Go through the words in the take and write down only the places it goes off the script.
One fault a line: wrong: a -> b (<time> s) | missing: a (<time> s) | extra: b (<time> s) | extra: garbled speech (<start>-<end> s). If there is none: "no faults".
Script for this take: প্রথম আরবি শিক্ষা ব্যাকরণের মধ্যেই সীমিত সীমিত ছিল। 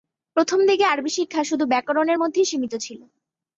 extra: দিকে (0.7 s)
extra: শুধু (1.4 s)
missing: সীমিত (2.7 s)